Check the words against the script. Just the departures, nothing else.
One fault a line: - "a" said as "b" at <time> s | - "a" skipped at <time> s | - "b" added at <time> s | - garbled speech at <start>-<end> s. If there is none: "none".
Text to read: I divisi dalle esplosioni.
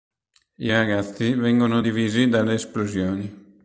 - "ragazzi vengono" added at 0.7 s